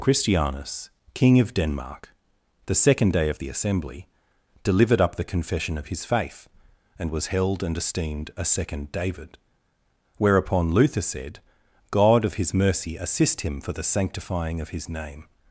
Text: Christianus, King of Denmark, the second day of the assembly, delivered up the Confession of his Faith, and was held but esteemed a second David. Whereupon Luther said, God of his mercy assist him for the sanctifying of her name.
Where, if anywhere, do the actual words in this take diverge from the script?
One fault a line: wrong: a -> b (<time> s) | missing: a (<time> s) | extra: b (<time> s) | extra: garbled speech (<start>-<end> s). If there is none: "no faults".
wrong: but -> and (7.6 s)
wrong: her -> his (14.7 s)